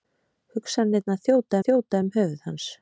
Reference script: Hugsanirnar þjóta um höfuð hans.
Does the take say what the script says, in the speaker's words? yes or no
no